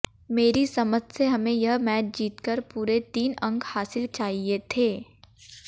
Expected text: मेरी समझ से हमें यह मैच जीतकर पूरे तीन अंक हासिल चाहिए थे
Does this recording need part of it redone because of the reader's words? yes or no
no